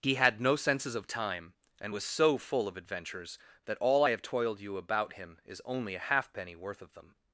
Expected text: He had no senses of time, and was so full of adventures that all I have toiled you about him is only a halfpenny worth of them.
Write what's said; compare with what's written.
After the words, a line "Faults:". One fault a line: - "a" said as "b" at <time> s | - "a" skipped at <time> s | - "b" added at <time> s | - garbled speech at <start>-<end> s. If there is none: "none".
He had no senses of time, and was so full of adventures that all I have toiled you about him is only a halfpenny worth of them.
Faults:
none